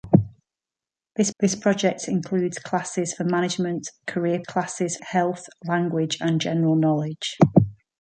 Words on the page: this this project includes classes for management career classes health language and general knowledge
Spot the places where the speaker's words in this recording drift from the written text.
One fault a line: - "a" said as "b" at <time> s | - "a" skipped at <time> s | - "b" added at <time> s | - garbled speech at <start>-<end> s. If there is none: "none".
none